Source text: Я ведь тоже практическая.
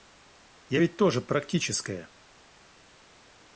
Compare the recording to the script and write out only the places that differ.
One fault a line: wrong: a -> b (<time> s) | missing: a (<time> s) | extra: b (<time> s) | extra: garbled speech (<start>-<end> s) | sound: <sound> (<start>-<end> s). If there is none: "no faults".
no faults